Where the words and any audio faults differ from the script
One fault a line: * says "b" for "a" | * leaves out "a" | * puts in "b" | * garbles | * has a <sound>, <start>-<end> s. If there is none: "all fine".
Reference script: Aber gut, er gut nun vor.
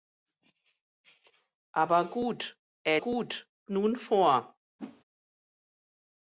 * has a whoosh, 4.8-5.0 s